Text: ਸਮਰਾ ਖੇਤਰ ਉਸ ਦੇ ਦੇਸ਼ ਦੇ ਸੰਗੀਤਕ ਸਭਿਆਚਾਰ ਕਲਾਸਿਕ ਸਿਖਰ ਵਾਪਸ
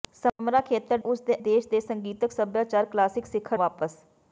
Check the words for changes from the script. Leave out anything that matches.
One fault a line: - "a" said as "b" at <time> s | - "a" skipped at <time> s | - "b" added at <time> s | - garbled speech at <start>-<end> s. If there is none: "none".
none